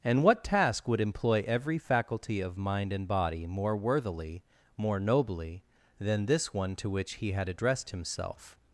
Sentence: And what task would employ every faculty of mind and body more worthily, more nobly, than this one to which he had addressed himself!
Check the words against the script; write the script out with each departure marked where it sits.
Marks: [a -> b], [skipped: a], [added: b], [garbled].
And what task would employ every faculty of mind and body more worthily, more nobly, than this one to which he had addressed himself!